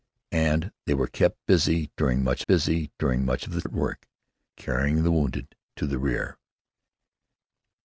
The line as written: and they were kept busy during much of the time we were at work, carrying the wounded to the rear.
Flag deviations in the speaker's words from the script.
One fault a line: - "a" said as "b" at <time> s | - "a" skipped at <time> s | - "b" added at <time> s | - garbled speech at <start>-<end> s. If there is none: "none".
- "of the time we were" said as "busy during much of the" at 2.5 s